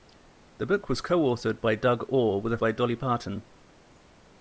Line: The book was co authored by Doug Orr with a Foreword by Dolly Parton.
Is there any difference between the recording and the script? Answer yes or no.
yes